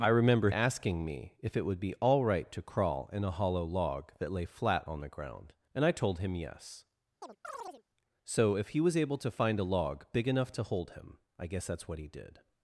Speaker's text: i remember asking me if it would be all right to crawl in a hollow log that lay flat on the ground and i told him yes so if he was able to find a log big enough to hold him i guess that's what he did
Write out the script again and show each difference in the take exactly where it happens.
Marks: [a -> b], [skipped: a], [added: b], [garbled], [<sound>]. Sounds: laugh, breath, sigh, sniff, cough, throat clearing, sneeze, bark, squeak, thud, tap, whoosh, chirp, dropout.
i remember asking me if it would be all right to crawl in a hollow log that lay flat on the ground and i told him yes [chirp] so if he was able to find a log big enough to hold him i guess that's what he did